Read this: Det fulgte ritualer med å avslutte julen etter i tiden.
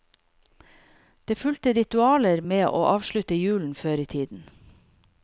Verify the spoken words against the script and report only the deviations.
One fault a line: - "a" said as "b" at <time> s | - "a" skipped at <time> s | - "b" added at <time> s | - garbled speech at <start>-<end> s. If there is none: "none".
- "etter" said as "før" at 3.8 s